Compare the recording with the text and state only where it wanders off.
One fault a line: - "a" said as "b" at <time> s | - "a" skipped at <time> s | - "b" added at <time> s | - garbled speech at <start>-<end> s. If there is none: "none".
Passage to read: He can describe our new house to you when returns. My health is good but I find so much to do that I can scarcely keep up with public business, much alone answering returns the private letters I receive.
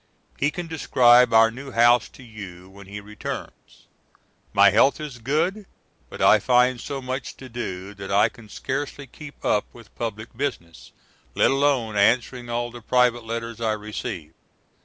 - "he" added at 2.9 s
- "much" said as "let" at 11.3 s
- "returns" said as "all" at 12.5 s